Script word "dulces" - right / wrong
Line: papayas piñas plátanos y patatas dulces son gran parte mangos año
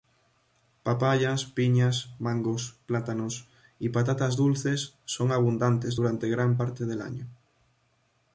right